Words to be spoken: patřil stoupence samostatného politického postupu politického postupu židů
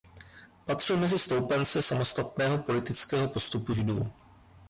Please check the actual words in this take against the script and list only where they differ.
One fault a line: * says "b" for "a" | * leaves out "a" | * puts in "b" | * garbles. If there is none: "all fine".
* puts in "mezi"
* leaves out "politického postupu"